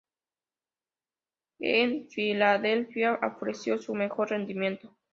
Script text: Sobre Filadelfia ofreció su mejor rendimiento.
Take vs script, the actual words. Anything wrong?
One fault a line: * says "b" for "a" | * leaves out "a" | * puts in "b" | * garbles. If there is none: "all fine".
* says "En" for "Sobre"